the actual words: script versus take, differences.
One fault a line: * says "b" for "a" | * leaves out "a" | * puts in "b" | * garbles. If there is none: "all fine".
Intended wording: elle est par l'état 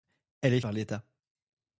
all fine